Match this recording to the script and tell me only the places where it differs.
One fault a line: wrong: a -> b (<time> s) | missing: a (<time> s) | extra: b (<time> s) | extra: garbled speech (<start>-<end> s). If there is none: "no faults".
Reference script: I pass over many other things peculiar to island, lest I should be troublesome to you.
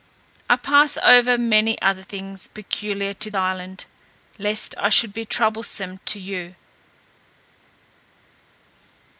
no faults